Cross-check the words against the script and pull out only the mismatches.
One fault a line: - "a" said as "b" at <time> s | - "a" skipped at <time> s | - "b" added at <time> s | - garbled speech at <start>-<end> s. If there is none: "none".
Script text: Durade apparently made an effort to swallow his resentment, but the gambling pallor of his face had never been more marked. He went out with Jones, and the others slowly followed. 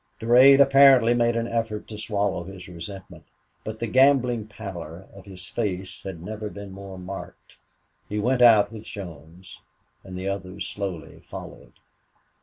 none